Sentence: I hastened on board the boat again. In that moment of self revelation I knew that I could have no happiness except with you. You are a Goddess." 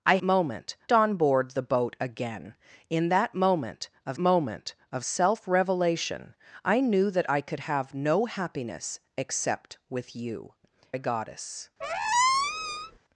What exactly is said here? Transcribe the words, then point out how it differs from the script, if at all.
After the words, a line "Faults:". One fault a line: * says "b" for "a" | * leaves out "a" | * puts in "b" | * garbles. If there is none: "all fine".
I moment on board the boat again. In that moment of moment of self revelation I knew that I could have no happiness except with you. A Goddess."
Faults:
* says "moment" for "hastened"
* puts in "moment of"
* leaves out "You are"